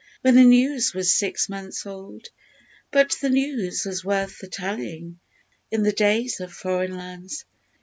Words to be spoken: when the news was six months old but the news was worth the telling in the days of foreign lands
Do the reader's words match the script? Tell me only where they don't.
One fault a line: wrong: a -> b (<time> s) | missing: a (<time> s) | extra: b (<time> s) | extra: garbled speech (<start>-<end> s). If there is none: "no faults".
no faults